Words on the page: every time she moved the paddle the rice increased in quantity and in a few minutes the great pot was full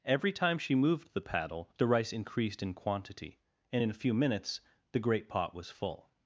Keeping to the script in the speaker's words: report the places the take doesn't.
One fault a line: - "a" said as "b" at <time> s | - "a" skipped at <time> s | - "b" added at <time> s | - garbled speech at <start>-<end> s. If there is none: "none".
none